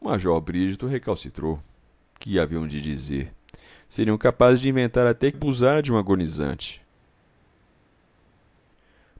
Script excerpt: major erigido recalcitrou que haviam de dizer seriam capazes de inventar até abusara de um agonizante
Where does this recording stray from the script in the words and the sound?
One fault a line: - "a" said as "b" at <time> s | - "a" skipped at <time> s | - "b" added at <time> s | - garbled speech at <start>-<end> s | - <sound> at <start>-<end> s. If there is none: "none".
none